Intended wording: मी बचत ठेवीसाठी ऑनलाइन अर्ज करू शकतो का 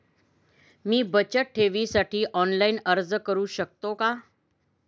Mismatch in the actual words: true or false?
false